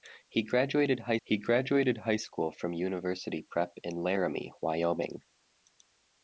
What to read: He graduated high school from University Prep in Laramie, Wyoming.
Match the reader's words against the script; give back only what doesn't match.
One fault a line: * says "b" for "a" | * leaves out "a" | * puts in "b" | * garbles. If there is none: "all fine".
* puts in "he graduated high"